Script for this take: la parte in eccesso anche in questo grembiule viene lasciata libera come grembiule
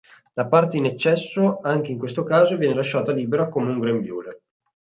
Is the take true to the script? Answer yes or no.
no